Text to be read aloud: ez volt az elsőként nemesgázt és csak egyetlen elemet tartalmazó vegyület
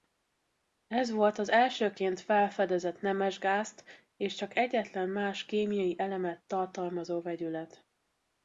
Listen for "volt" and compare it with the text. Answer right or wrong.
right